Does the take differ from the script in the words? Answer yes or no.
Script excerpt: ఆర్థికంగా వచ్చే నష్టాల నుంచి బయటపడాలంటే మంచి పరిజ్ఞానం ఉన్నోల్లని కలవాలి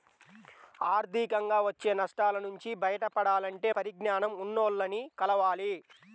yes